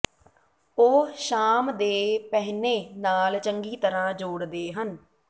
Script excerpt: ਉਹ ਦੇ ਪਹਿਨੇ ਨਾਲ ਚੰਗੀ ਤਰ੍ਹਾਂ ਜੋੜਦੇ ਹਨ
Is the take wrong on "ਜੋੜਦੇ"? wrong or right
right